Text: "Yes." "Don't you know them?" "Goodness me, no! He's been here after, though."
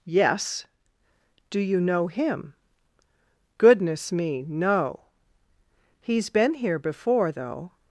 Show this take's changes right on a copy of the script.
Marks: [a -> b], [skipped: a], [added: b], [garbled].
"Yes." ["Don't -> Do] you know [them?" -> him] "Goodness me, no! He's been here [after, -> before] though."